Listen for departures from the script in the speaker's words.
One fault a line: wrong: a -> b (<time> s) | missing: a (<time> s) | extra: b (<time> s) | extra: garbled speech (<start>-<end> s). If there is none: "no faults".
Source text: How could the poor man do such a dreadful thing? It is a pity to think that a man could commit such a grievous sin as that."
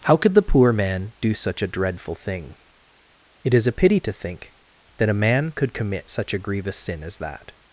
no faults